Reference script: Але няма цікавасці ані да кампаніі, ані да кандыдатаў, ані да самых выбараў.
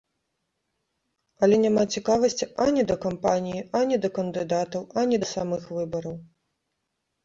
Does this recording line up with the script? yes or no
yes